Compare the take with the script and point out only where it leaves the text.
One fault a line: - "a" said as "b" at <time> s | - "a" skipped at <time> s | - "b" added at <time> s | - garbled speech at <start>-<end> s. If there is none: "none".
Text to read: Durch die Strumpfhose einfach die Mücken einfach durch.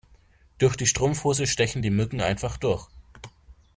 - "einfach" said as "stechen" at 1.4 s